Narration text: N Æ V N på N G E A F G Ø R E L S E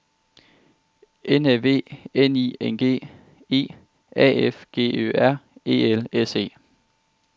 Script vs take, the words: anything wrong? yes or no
yes